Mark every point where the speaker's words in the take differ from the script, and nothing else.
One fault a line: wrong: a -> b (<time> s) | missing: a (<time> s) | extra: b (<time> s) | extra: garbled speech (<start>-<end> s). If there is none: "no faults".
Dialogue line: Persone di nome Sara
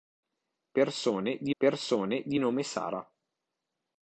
extra: persone di (1.6 s)